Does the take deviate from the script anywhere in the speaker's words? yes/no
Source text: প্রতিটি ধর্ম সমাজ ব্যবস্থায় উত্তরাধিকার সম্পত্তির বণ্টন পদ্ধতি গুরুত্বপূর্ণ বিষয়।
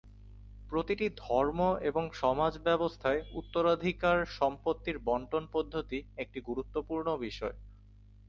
yes